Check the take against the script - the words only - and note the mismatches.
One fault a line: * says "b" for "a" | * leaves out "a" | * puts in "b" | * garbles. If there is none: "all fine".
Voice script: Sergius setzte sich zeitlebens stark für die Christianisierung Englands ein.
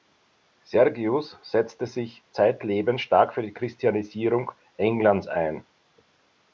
all fine